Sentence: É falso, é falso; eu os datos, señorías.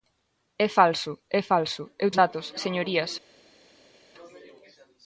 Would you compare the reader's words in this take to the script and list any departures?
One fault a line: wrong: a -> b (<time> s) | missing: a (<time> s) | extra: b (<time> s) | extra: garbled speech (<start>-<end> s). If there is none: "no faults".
no faults